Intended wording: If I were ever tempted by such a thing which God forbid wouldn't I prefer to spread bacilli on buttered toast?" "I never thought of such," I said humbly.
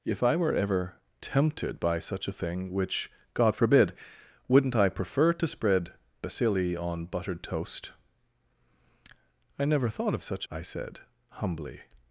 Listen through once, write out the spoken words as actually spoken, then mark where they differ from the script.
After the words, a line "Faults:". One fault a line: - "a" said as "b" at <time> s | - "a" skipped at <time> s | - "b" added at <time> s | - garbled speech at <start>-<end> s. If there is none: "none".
If I were ever tempted by such a thing which God forbid wouldn't I prefer to spread bacilli on buttered toast?" "I never thought of such," I said humbly.
Faults:
none